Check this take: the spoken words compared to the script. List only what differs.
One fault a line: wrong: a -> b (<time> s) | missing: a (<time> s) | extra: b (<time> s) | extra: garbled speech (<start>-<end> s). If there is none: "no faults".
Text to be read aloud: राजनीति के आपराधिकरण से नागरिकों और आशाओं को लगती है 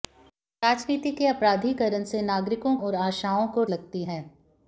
no faults